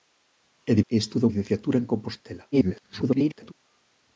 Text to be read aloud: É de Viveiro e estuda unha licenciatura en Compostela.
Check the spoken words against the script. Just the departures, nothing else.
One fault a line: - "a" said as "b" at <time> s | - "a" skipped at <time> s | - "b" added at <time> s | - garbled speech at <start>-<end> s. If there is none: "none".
- "Viveiro" skipped at 0.8 s
- "unha" skipped at 1.3 s
- garbled speech at 2.5-3.5 s